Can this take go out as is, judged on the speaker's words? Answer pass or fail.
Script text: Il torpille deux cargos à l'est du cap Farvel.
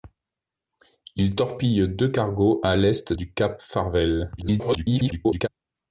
fail